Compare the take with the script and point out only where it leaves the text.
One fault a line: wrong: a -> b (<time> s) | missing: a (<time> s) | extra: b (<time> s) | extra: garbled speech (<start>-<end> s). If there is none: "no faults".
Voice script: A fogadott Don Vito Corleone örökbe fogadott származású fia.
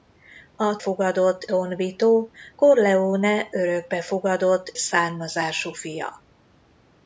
no faults